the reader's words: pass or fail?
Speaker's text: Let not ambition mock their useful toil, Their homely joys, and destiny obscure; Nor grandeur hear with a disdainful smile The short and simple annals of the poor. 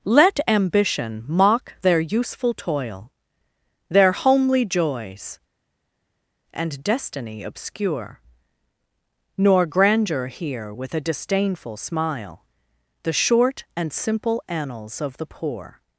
fail